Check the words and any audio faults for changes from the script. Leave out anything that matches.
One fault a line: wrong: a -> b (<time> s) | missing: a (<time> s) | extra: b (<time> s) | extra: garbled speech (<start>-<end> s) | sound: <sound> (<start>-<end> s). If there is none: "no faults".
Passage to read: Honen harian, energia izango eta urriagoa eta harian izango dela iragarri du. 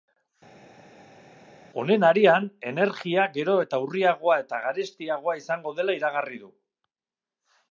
wrong: izango -> gero (3.4 s)
wrong: harian -> garestiagoa (4.7 s)